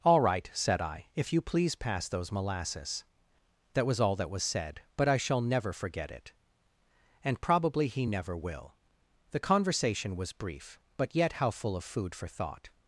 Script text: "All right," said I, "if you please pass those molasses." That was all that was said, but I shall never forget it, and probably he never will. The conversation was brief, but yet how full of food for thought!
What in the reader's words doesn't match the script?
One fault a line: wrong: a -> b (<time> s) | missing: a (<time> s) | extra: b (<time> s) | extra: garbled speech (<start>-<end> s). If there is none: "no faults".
no faults